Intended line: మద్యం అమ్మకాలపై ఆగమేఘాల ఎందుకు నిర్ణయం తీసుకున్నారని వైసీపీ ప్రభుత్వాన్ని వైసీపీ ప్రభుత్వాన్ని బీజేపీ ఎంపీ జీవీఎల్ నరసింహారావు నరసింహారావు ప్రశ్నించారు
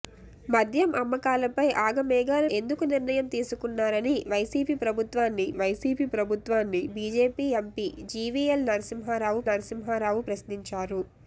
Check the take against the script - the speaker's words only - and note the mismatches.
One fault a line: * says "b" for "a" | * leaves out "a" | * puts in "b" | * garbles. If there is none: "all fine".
all fine